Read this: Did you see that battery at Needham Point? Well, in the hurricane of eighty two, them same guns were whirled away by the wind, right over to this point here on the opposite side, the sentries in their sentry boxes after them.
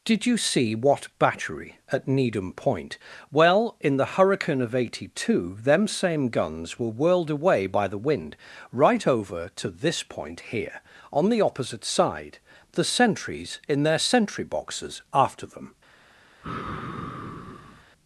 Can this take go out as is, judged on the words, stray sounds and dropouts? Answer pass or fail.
fail